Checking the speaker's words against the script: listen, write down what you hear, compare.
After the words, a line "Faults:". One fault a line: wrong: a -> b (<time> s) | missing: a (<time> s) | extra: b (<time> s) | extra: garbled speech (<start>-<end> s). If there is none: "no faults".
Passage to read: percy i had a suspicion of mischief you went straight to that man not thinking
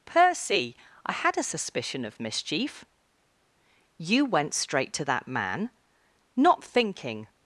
percy i had a suspicion of mischief you went straight to that man not thinking
Faults:
no faults